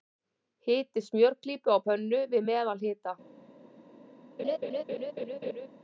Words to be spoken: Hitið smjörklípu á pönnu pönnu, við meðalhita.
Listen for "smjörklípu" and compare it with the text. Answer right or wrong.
right